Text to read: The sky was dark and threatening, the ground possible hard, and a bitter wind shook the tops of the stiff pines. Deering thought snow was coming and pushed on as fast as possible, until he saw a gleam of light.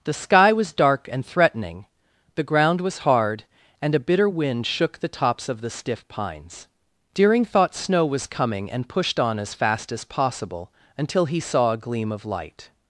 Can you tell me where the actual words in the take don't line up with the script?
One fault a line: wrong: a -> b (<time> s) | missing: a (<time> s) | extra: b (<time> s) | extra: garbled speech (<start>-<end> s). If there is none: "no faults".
wrong: possible -> was (2.8 s)